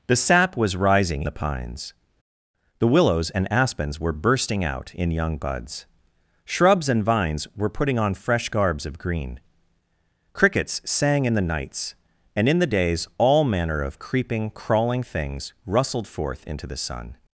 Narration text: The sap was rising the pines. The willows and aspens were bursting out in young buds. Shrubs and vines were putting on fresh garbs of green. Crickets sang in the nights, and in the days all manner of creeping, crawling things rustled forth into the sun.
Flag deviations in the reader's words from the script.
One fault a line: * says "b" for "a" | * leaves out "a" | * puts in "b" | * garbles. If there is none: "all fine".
all fine